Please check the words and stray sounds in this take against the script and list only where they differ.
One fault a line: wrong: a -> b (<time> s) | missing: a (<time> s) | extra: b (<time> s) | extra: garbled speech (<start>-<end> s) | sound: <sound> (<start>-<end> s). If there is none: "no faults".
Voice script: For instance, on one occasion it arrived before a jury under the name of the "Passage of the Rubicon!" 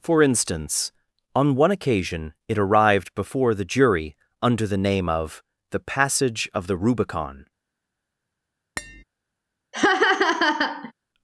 wrong: a -> the (3.5 s)
sound: tap (8.8-9.0 s)
sound: laugh (9.7-10.9 s)